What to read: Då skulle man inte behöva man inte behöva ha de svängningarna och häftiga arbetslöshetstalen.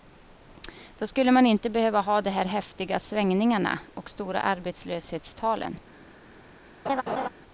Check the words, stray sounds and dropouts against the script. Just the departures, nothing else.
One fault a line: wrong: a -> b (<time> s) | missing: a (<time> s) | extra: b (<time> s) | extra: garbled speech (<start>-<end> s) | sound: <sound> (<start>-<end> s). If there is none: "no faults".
wrong: man inte behöva ha de -> ha de här häftiga (2.0 s)
wrong: häftiga -> stora (4.1 s)
sound: laugh (6.9-7.3 s)